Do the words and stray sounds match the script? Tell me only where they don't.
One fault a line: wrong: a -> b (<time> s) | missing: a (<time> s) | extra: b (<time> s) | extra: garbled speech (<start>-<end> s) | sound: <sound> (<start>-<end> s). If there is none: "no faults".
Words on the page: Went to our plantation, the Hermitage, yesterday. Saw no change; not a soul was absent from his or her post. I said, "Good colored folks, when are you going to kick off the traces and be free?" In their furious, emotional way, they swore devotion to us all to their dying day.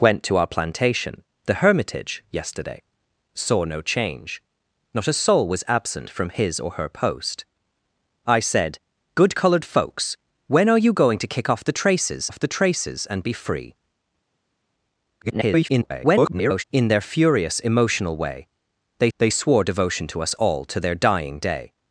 extra: off the traces (12.3 s)
extra: garbled speech (15.2-16.6 s)
extra: they (19.2 s)